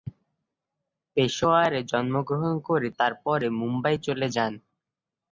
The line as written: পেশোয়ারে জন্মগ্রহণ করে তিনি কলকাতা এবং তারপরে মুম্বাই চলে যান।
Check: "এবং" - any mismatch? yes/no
yes